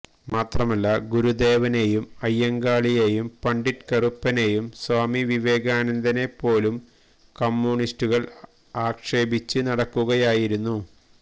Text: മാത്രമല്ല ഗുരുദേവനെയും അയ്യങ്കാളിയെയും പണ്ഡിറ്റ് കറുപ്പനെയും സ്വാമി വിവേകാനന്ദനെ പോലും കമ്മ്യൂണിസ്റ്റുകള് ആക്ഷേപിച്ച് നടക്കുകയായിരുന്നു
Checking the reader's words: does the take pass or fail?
pass